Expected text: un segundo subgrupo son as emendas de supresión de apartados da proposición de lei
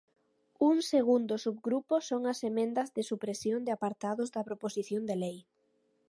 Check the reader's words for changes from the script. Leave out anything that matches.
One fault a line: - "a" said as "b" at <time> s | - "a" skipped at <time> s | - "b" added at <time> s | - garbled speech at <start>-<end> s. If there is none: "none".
none